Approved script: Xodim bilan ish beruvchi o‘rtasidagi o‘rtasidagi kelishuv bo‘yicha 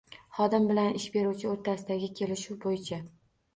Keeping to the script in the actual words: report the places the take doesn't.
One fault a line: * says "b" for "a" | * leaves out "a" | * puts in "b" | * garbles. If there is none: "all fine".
* leaves out "o‘rtasidagi"